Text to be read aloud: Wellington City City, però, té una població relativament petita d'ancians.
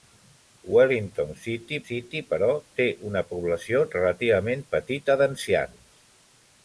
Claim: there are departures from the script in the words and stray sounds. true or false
false